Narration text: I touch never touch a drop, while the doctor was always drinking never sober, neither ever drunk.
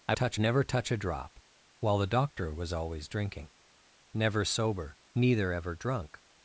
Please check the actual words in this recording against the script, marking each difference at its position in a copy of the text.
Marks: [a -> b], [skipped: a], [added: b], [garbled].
I touch never touch a drop, while the doctor was always drinking never sober, neither ever drunk.